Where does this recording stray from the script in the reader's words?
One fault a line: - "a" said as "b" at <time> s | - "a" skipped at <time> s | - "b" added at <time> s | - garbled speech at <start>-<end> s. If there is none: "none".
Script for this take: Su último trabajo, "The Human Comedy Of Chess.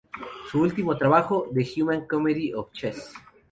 none